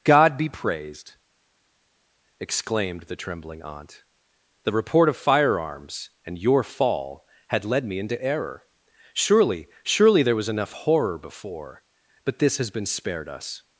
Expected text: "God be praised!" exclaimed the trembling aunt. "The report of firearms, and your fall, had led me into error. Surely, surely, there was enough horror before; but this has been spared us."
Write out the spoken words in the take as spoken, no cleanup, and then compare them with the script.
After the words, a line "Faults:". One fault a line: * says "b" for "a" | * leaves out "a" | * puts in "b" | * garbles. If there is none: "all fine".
"God be praised!" exclaimed the trembling aunt. "The report of firearms, and your fall, had led me into error. Surely, surely, there was enough horror before; but this has been spared us."
Faults:
all fine